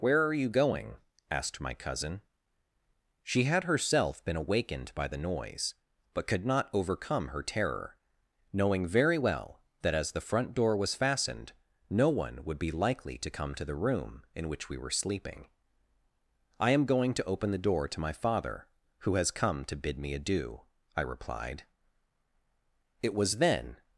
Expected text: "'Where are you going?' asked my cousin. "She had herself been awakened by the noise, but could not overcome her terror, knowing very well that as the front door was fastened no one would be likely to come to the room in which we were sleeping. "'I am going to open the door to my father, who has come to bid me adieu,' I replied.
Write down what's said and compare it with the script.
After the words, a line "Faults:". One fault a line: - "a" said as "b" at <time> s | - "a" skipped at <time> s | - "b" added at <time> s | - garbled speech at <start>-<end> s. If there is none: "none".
"'Where are you going?' asked my cousin. "She had herself been awakened by the noise, but could not overcome her terror, knowing very well that as the front door was fastened no one would be likely to come to the room in which we were sleeping. "'I am going to open the door to my father, who has come to bid me adieu,' I replied. "It was then
Faults:
- "It was then" added at 23.0 s